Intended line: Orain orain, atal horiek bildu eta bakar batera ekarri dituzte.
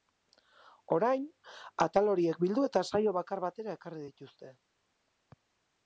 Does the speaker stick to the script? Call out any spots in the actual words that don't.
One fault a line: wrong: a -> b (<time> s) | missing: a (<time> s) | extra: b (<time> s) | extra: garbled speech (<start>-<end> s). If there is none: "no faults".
missing: orain (1.3 s)
extra: saio (2.9 s)